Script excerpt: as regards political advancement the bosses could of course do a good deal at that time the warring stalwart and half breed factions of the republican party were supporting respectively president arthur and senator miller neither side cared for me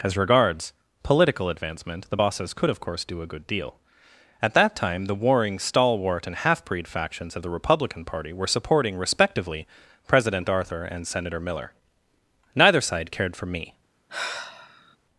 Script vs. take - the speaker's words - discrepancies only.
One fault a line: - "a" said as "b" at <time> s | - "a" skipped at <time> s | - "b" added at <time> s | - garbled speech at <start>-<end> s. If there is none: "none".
none